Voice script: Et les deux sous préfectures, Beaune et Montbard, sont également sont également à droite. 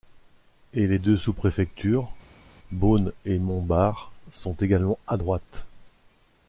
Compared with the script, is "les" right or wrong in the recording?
right